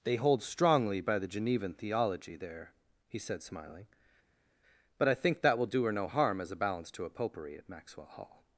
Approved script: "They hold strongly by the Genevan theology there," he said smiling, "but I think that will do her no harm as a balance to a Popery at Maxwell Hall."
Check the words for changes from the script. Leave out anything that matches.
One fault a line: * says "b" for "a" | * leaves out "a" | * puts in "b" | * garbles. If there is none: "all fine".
all fine